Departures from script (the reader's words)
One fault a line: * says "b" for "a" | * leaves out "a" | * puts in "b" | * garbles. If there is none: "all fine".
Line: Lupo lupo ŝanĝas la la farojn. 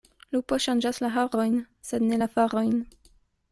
* leaves out "lupo"
* puts in "harojn sed ne"